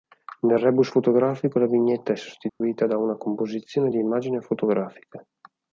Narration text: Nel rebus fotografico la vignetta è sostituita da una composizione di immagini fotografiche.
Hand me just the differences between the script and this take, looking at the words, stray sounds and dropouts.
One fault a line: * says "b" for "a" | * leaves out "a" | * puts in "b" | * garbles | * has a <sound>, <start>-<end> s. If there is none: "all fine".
* has a dropout, 2.5-2.6 s